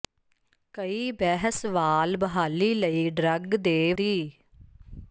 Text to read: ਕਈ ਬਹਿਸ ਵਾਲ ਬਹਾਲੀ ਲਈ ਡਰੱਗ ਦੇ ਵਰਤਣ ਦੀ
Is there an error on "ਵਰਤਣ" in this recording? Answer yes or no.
yes